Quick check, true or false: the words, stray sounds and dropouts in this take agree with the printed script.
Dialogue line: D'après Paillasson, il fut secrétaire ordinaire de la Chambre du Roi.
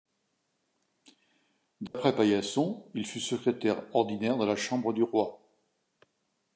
false